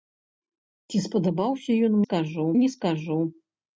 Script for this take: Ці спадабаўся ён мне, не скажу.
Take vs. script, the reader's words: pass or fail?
fail